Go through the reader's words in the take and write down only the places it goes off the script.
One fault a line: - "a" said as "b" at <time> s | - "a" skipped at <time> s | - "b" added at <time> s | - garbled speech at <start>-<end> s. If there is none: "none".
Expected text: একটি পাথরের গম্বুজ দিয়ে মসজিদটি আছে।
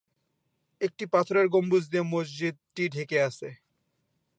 - "ঢেকে" added at 2.9 s